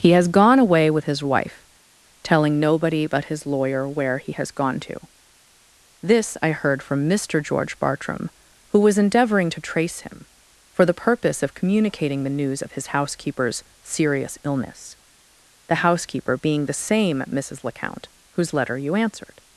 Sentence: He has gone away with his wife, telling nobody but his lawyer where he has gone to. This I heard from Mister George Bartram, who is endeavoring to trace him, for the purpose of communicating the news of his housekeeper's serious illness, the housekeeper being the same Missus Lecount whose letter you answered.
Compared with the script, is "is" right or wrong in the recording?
wrong